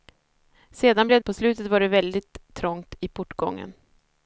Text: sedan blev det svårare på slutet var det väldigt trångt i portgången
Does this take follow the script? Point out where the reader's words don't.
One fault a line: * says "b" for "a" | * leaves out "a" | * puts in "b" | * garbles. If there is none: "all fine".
* leaves out "det svårare"